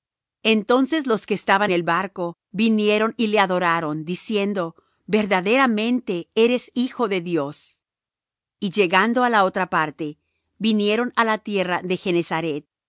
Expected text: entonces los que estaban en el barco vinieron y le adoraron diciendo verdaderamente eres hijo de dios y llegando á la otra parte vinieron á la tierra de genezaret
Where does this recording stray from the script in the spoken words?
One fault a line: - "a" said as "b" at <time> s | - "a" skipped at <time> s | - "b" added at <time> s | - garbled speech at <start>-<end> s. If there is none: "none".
- "en" skipped at 1.7 s